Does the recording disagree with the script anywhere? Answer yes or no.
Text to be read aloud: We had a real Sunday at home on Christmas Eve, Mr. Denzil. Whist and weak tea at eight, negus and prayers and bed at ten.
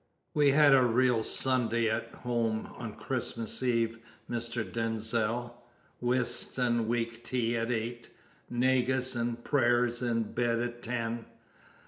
no